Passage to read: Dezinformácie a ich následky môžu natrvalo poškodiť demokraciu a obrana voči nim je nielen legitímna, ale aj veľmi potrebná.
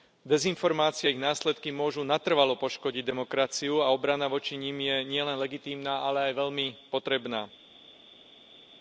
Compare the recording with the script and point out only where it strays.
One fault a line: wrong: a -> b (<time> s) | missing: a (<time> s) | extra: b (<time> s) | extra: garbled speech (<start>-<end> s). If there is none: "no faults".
no faults